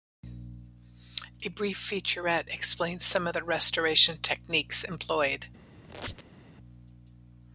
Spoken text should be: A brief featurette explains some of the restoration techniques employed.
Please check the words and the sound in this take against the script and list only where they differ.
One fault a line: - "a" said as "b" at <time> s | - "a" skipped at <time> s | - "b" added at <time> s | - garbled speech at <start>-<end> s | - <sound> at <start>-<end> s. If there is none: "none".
- squeak at 5.8-6.4 s